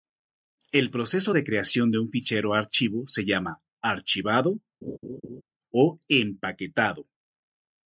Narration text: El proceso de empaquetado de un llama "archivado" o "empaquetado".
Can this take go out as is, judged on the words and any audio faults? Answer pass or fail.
fail